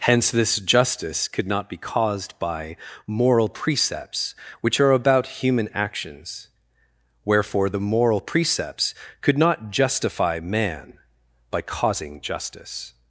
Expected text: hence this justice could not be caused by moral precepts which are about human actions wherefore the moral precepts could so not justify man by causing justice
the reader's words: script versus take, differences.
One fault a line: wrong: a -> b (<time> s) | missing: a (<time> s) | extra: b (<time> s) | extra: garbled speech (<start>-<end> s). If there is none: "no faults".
missing: so (9.4 s)